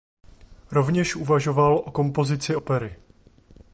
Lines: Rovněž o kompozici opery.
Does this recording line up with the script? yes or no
no